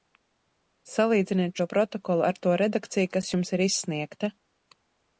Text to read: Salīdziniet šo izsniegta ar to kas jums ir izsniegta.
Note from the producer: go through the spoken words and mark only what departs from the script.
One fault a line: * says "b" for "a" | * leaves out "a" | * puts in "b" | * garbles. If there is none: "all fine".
* says "protokolu" for "izsniegta"
* puts in "redakciju"